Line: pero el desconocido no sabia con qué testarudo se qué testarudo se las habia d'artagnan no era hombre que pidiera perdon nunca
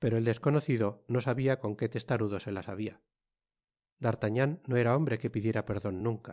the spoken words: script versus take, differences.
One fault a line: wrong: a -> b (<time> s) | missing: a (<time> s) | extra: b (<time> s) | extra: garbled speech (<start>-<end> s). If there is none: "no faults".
missing: qué testarudo se (2.5 s)